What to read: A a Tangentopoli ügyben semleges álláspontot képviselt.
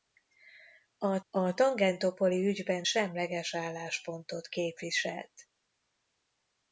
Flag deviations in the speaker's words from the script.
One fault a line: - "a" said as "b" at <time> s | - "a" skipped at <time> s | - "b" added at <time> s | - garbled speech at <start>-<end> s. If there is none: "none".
none